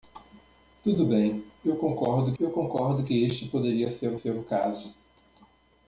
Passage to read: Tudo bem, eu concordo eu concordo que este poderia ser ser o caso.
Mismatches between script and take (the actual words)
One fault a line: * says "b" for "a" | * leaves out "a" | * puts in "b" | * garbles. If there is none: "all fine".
all fine